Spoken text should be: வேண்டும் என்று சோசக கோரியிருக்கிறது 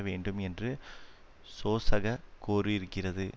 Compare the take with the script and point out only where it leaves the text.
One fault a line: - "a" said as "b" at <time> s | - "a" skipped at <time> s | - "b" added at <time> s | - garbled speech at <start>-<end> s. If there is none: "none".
none